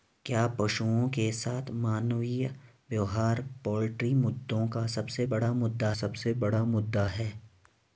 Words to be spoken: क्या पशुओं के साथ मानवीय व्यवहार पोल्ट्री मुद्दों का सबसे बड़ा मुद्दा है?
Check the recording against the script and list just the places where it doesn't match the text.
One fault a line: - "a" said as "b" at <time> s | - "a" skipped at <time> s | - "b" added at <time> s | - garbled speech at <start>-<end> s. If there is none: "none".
- "सबसे बड़ा मुद्दा" added at 5.9 s